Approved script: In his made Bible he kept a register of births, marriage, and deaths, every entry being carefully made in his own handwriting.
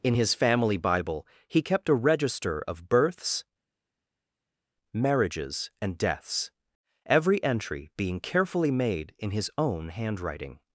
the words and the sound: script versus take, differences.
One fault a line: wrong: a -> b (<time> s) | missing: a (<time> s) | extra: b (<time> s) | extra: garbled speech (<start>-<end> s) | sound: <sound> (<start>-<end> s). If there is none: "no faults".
wrong: made -> family (0.3 s)
wrong: marriage -> marriages (4.9 s)